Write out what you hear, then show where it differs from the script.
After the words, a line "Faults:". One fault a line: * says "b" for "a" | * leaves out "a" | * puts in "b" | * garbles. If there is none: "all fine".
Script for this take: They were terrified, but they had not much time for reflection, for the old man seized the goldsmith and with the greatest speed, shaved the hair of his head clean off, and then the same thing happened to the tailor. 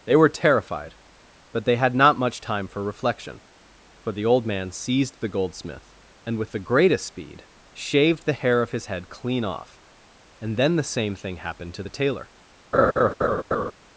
They were terrified, but they had not much time for reflection, for the old man seized the goldsmith and with the greatest speed, shaved the hair of his head clean off, and then the same thing happened to the tailor.
Faults:
all fine